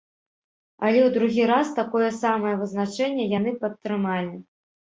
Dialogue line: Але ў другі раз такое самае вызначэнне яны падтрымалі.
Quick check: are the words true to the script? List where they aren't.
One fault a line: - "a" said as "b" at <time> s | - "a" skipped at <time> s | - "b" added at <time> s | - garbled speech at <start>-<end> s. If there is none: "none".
none